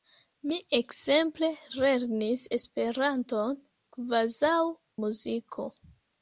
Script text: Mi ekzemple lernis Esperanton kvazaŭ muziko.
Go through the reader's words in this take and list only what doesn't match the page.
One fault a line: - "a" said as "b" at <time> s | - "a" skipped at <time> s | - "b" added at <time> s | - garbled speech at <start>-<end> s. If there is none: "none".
none